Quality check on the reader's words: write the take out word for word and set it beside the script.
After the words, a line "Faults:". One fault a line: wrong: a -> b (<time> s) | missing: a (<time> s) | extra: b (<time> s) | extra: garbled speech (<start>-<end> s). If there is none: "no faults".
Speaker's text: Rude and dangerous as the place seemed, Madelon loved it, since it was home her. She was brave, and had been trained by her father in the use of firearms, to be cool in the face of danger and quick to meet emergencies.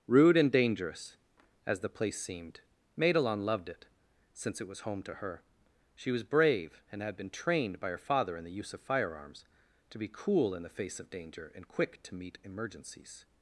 Rude and dangerous as the place seemed, Madelon loved it, since it was home to her. She was brave, and had been trained by her father in the use of firearms, to be cool in the face of danger and quick to meet emergencies.
Faults:
extra: to (5.0 s)